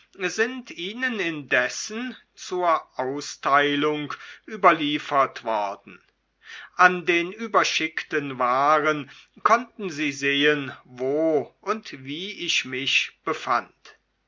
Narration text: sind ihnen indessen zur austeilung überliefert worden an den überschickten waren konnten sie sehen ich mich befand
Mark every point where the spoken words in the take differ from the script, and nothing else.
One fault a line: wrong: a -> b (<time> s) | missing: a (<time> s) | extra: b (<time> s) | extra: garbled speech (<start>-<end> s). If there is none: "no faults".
extra: wo und wie (10.9 s)